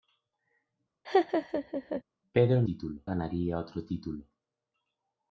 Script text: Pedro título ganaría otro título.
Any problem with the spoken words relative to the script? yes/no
no